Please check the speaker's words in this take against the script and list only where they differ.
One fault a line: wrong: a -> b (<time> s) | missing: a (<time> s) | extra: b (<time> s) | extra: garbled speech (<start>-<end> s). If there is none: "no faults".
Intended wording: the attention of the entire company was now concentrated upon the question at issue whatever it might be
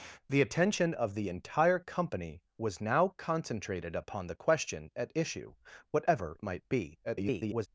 missing: it (6.4 s)
extra: garbled speech (7.0-7.7 s)